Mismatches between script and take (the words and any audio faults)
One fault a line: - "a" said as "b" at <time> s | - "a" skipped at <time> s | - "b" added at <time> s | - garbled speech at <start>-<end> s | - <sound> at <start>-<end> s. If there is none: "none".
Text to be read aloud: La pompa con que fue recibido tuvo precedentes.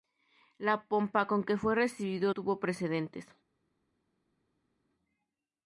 none